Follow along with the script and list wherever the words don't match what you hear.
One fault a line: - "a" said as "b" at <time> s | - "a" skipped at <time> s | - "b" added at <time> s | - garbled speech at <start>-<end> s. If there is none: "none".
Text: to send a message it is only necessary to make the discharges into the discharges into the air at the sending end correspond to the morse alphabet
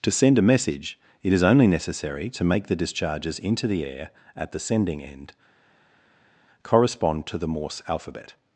- "discharges into the" skipped at 3.9 s